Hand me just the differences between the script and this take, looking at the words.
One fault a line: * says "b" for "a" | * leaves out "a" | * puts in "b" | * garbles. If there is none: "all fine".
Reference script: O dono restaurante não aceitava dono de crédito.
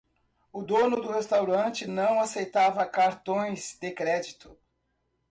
* puts in "do"
* says "cartões" for "dono"